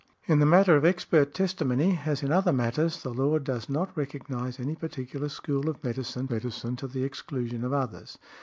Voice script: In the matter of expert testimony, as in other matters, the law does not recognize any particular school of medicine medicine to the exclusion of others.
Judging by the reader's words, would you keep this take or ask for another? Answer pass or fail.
pass